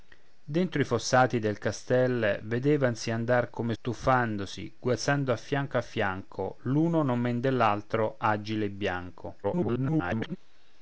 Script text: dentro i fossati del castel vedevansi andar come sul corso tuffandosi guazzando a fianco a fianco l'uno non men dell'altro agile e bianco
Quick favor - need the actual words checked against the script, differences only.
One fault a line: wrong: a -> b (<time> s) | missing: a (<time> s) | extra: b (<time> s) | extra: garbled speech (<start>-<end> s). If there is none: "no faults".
missing: sul corso (3.8 s)
extra: garbled speech (9.4-10.4 s)